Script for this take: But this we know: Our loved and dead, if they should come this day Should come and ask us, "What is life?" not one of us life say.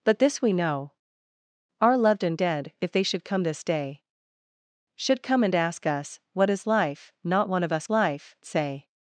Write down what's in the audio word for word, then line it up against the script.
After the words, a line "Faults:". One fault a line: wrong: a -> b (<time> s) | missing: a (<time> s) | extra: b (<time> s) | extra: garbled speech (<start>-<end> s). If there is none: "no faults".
But this we know: Our loved and dead, if they should come this day Should come and ask us, "What is life?" not one of us life say.
Faults:
no faults